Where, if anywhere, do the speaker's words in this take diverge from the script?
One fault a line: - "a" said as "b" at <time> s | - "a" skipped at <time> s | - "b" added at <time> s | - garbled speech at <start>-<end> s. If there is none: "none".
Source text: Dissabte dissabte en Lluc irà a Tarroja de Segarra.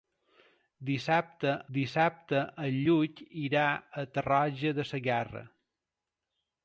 none